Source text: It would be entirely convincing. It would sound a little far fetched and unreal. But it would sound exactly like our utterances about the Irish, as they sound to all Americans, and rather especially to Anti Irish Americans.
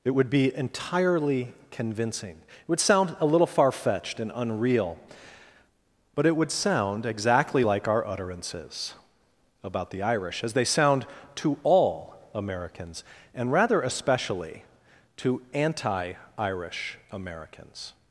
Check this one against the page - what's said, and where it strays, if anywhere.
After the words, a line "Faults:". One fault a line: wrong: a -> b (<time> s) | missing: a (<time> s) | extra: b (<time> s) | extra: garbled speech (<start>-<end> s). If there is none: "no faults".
It would be entirely convincing. It would sound a little far fetched and unreal. But it would sound exactly like our utterances about the Irish, as they sound to all Americans, and rather especially to Anti Irish Americans.
Faults:
no faults